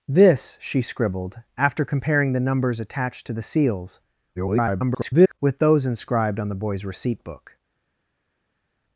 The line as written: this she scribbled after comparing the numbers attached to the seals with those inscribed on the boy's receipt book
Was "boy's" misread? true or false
false